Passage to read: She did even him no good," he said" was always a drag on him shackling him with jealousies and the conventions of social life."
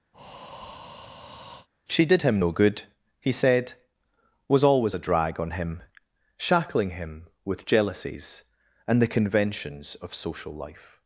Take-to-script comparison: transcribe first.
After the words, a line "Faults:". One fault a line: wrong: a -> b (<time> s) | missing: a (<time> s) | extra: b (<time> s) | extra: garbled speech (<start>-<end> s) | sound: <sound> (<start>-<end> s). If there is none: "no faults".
She did him no good," he said" was always a drag on him shackling him with jealousies and the conventions of social life."
Faults:
sound: breath (0.1-1.7 s)
missing: even (2.2 s)